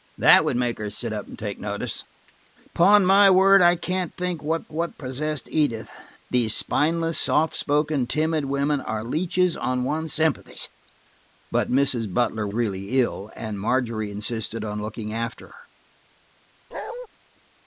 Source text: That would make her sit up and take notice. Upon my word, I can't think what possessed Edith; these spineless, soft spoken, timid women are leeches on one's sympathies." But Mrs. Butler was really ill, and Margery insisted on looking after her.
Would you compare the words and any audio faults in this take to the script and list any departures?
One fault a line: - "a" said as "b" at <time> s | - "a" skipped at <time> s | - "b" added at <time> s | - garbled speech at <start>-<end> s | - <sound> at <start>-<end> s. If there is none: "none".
- "what" added at 4.7 s
- "was" skipped at 12.5 s
- bark at 16.7-17.1 s